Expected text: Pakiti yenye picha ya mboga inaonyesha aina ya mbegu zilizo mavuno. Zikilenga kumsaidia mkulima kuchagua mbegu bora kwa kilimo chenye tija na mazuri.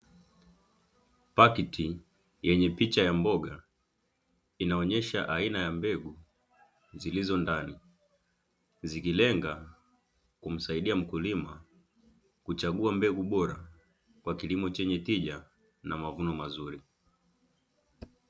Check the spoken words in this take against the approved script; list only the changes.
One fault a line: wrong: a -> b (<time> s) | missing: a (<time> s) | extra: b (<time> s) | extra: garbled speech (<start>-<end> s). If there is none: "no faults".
wrong: mavuno -> ndani (7.4 s)
extra: mavuno (16.0 s)